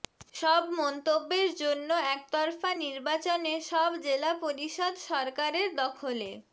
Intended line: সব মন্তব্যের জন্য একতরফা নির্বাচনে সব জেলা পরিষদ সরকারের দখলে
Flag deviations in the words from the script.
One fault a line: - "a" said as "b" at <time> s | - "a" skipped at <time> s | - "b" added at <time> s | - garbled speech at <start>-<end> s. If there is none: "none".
none